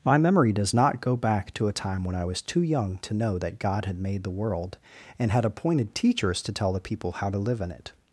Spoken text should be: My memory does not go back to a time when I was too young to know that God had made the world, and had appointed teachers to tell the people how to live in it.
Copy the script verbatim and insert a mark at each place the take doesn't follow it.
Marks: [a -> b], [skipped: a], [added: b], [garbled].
My memory does not go back to a time when I was too young to know that God had made the world, and had appointed teachers to tell the people how to live in it.